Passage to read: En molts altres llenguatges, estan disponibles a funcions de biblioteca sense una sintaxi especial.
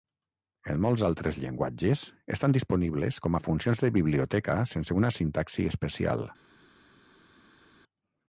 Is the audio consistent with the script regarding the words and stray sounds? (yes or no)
no